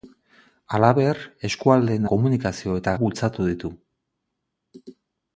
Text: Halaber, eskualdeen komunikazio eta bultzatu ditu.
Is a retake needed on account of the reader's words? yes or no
no